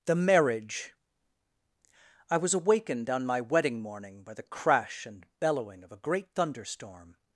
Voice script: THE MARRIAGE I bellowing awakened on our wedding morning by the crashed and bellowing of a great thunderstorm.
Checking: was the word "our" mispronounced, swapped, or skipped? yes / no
yes